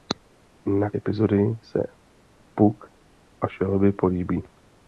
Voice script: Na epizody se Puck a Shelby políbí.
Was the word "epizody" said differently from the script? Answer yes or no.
no